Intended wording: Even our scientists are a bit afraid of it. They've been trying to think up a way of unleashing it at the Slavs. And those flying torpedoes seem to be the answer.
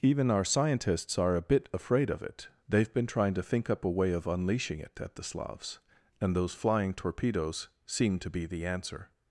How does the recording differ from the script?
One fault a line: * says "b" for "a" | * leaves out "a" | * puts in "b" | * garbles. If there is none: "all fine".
all fine